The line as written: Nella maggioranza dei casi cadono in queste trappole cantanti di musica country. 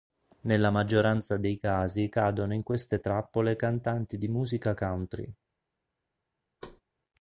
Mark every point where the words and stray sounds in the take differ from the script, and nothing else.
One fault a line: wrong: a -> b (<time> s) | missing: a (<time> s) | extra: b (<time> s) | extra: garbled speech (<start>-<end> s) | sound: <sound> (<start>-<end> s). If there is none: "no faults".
sound: thud (6.6-6.8 s)